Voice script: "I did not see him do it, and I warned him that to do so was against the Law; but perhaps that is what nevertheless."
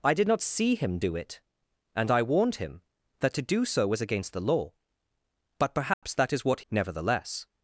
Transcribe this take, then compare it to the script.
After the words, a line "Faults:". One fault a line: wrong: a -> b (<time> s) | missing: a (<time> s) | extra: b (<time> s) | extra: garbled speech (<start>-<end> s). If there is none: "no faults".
"I did not see him do it, and I warned him that to do so was against the Law; but perhaps that is what nevertheless."
Faults:
no faults